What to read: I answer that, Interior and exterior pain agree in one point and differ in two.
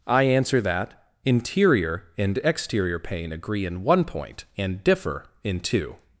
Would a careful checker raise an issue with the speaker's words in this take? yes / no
no